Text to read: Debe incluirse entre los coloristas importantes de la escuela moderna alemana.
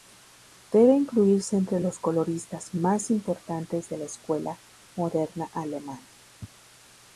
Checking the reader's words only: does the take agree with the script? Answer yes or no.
no